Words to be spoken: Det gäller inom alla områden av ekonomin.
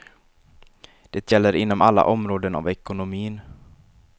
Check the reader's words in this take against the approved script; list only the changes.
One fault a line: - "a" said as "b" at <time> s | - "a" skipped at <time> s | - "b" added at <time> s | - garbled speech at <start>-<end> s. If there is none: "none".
none